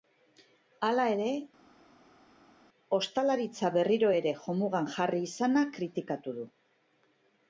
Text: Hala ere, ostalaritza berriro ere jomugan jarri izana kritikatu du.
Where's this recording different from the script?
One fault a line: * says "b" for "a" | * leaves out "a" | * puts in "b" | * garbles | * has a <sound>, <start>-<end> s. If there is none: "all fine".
all fine